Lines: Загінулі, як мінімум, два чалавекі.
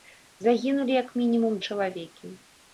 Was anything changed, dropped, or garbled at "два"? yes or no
yes